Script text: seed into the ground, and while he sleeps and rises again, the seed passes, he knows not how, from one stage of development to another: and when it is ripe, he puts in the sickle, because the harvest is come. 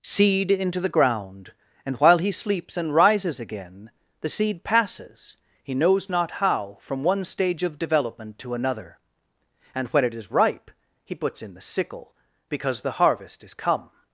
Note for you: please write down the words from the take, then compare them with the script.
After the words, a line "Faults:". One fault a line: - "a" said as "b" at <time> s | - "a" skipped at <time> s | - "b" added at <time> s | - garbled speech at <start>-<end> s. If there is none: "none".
seed into the ground, and while he sleeps and rises again, the seed passes, he knows not how, from one stage of development to another: and when it is ripe, he puts in the sickle, because the harvest is come.
Faults:
none